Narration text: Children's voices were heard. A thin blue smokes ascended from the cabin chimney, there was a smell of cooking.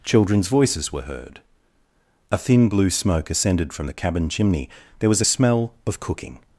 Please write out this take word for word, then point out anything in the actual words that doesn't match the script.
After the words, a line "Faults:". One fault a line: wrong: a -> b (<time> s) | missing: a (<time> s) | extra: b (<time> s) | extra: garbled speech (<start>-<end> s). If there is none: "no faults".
Children's voices were heard. A thin blue smoke ascended from the cabin chimney, there was a smell of cooking.
Faults:
wrong: smokes -> smoke (2.9 s)